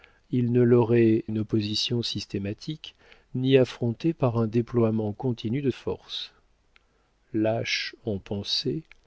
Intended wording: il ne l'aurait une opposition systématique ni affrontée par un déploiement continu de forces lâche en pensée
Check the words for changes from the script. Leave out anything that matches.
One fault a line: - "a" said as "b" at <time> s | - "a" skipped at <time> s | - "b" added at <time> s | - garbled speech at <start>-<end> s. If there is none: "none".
none